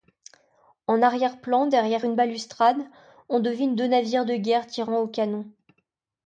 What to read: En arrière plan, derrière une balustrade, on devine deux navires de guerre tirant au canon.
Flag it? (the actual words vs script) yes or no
no